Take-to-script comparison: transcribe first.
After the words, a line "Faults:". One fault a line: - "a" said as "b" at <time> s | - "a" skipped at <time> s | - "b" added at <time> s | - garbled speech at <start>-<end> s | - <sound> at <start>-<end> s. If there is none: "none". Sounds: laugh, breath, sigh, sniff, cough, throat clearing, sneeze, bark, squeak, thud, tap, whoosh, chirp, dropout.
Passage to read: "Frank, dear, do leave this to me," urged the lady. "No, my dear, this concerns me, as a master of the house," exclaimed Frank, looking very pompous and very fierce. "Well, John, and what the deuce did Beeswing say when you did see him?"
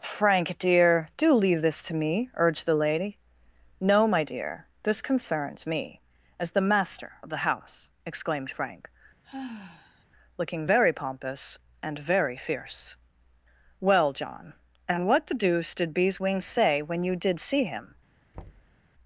"Frank, dear, do leave this to me," urged the lady. "No, my dear, this concerns me, as the master of the house," exclaimed Frank, looking very pompous and very fierce. "Well, John, and what the deuce did Beeswing say when you did see him?"
Faults:
- "a" said as "the" at 6.5 s
- sigh at 9.2-10.1 s
- thud at 18.3-18.8 s